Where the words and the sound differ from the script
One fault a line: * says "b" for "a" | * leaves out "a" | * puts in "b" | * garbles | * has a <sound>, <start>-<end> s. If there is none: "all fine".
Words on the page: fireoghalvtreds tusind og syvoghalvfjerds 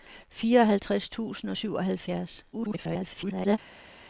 * garbles